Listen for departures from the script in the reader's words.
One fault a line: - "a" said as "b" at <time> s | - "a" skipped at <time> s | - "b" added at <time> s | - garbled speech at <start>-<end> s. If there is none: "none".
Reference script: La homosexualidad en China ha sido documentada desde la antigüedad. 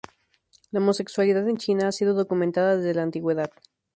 none